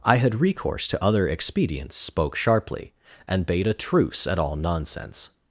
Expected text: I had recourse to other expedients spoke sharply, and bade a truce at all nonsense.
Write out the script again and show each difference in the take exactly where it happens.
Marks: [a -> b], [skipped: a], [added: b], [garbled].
I had recourse to other expedients spoke sharply, and bade a truce at all nonsense.